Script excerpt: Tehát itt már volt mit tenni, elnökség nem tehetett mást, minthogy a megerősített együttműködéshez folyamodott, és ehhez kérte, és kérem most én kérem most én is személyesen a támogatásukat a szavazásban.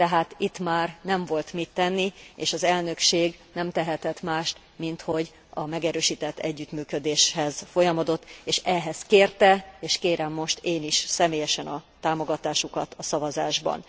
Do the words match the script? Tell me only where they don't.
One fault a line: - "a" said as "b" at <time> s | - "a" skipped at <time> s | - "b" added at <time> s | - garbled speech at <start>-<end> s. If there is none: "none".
- "nem" added at 1.0 s
- "és az" added at 2.4 s
- "kérem most én" skipped at 10.8 s